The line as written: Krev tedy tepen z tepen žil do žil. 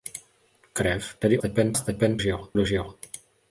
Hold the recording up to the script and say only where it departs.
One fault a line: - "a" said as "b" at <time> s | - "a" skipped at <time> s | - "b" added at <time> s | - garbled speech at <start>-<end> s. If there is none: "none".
none